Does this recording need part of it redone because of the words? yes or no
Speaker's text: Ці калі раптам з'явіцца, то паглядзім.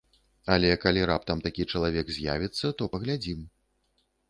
yes